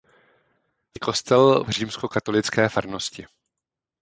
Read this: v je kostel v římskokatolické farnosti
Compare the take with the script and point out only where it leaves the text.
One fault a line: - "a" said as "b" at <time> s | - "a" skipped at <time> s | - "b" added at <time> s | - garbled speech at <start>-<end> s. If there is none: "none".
none